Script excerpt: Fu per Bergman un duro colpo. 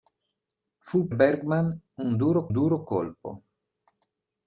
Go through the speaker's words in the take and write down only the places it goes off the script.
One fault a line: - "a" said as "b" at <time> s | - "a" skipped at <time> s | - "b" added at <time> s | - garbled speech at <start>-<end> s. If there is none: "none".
- "per" skipped at 1.1 s
- "duro" added at 2.5 s